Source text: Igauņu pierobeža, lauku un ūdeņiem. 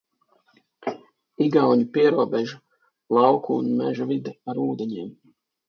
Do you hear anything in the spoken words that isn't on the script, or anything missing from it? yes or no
yes